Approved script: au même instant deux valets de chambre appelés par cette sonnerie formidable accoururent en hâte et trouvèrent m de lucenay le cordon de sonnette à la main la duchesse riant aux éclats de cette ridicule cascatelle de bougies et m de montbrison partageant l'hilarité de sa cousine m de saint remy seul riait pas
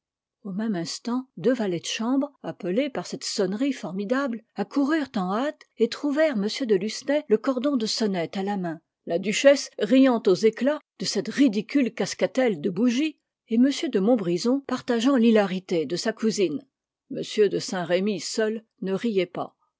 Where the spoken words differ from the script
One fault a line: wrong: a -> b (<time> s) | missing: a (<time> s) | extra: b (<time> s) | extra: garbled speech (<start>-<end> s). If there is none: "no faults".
extra: ne (18.8 s)